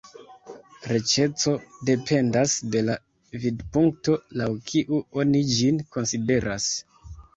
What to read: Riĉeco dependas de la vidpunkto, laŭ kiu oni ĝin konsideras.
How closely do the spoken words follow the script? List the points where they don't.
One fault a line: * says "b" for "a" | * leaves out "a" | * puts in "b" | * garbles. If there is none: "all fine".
all fine